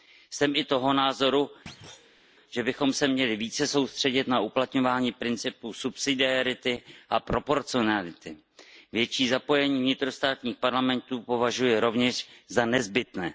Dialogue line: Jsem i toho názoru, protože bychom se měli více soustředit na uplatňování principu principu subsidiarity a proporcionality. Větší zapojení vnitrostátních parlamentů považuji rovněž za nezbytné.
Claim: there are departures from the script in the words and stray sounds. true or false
true